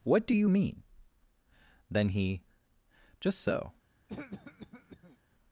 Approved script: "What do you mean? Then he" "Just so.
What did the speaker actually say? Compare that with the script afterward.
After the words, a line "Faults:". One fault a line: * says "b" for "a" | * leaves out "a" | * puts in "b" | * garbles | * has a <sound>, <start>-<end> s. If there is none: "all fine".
"What do you mean? Then he" "Just so.
Faults:
* has a cough, 4.1-5.2 s